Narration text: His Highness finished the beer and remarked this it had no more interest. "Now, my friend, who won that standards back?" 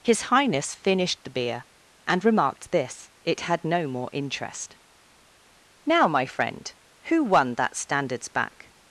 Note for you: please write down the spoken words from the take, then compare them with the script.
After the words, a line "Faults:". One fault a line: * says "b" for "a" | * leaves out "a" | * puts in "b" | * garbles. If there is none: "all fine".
His Highness finished the beer and remarked this it had no more interest. "Now, my friend, who won that standards back?"
Faults:
all fine